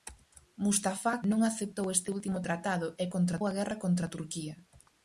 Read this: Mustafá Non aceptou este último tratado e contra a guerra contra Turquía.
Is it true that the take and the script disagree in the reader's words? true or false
false